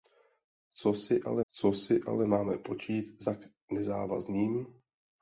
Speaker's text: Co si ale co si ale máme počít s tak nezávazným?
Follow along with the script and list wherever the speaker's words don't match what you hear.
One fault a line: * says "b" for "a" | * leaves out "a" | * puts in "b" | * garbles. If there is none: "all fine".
all fine